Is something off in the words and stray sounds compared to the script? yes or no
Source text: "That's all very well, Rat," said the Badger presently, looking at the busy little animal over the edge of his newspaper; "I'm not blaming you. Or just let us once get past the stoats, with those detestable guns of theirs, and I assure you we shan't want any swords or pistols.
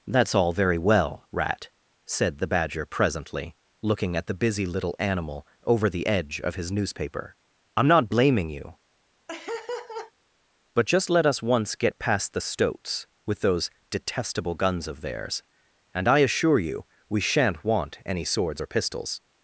yes